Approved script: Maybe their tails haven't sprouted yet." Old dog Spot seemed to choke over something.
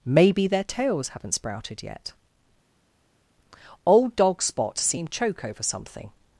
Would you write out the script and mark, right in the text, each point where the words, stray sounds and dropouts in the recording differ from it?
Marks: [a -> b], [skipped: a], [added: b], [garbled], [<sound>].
Maybe their tails haven't sprouted yet." Old dog Spot seemed [skipped: to] choke over something.